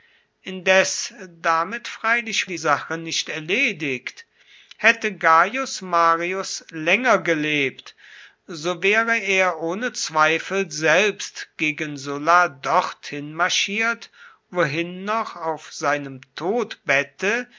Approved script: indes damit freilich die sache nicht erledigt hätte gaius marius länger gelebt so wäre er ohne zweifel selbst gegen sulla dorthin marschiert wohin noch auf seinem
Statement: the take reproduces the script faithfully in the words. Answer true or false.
true